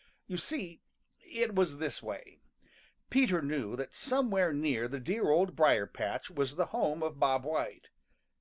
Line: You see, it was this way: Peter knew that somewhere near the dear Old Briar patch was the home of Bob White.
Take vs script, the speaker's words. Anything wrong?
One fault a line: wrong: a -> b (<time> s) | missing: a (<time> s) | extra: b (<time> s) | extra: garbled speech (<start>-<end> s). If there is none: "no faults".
no faults